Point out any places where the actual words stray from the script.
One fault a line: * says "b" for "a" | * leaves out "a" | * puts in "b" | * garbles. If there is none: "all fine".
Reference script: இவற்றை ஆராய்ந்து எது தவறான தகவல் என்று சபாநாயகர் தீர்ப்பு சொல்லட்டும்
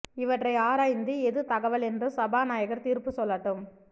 * leaves out "தவறான"